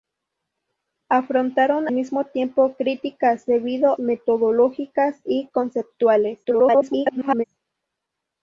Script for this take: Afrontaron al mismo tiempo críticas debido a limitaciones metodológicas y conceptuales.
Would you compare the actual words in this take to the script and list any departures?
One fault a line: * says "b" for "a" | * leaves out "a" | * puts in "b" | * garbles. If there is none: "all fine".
* leaves out "al"
* leaves out "a limitaciones"
* garbles